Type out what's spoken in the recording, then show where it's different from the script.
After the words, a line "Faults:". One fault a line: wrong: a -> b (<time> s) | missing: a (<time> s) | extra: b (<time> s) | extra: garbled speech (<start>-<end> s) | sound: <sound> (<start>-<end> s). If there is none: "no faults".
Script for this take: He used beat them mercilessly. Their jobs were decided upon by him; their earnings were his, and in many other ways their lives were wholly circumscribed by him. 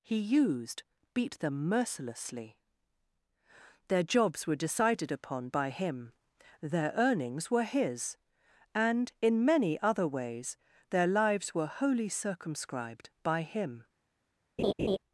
He used beat them mercilessly. Their jobs were decided upon by him; their earnings were his, and in many other ways their lives were wholly circumscribed by him.
Faults:
sound: laugh (14.6-15.0 s)